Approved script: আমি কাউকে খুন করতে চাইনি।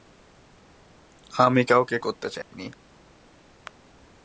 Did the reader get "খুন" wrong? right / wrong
wrong